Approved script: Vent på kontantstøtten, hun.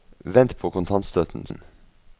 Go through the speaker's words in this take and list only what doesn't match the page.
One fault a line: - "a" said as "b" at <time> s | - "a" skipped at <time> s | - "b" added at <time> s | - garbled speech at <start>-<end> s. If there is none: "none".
none